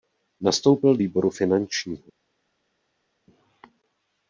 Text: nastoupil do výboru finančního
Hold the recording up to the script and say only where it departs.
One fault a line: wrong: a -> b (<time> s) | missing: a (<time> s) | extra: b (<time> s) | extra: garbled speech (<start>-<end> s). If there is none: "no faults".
missing: do (1.0 s)